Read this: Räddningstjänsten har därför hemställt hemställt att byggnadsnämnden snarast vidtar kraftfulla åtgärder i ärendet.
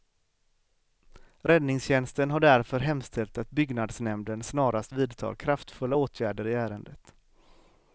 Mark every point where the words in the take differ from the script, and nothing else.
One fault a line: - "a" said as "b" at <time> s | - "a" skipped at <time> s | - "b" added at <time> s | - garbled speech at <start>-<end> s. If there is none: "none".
- "hemställt" skipped at 3.4 s